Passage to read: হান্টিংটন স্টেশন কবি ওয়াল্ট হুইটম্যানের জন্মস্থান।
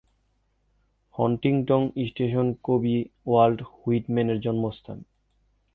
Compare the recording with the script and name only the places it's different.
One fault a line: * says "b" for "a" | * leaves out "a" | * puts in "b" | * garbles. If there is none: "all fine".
all fine